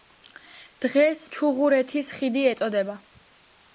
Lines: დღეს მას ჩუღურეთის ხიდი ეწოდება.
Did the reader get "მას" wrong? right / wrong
wrong